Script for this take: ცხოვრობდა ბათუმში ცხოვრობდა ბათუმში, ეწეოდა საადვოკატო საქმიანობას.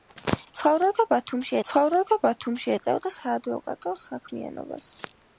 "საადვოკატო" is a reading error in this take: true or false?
false